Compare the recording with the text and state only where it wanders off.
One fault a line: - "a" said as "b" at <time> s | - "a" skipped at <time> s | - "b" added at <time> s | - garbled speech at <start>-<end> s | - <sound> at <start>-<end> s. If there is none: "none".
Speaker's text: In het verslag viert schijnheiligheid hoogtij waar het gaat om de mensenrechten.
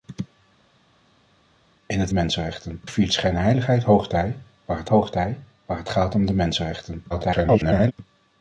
- "verslag" said as "mensenrechten" at 2.1 s
- "hoogtij waar het" added at 4.9 s
- garbled speech at 7.1-7.9 s